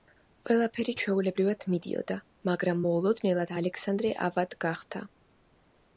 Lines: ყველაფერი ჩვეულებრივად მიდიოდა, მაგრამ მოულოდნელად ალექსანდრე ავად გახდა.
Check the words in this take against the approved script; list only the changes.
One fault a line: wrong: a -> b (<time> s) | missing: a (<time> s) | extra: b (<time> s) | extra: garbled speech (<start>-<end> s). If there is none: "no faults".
no faults